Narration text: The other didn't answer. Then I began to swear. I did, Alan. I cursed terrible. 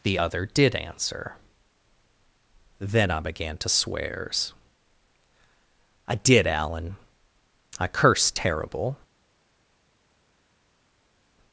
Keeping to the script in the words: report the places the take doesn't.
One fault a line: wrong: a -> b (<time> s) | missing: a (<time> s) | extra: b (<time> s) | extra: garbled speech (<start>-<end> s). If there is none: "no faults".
wrong: didn't -> did (0.5 s)
wrong: swear -> swears (3.7 s)